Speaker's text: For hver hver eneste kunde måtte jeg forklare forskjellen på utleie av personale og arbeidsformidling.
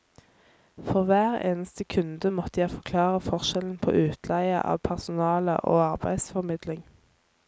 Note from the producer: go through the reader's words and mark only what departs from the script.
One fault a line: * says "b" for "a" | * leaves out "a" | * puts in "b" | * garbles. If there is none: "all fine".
* leaves out "hver"